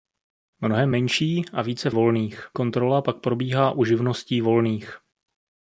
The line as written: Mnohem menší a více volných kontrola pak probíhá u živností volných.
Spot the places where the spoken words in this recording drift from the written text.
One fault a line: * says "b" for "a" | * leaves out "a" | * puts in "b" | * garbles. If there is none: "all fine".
all fine